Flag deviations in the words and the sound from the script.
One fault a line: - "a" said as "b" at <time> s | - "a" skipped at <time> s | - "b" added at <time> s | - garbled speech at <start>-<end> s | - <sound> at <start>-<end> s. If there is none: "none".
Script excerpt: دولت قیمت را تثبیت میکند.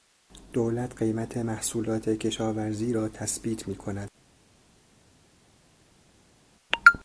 - "محصولات کشاورزی" added at 1.4 s